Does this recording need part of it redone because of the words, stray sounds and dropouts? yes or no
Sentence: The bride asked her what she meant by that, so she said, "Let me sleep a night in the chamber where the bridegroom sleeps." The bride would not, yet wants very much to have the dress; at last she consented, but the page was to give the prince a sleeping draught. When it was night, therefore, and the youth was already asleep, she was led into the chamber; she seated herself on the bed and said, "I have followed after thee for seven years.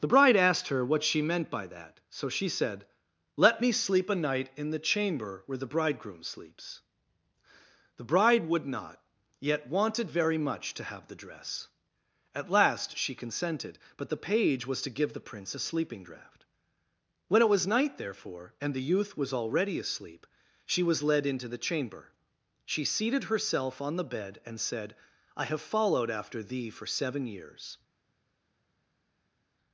yes